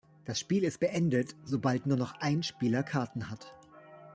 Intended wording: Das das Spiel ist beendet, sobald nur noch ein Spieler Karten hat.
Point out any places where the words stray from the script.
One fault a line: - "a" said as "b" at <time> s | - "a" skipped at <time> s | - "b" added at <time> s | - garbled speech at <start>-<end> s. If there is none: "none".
- "das" skipped at 0.4 s